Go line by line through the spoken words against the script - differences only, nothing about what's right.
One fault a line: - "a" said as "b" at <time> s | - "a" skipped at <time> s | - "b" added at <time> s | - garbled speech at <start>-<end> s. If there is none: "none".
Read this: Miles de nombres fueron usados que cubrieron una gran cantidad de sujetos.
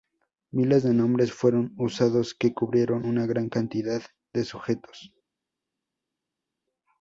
none